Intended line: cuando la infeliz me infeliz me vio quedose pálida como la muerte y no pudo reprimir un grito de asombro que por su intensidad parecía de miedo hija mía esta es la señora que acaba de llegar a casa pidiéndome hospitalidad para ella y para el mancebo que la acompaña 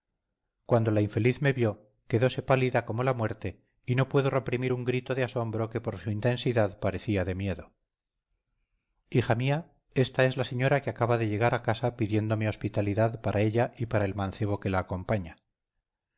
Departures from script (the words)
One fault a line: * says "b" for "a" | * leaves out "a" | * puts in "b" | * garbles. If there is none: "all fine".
* leaves out "infeliz me"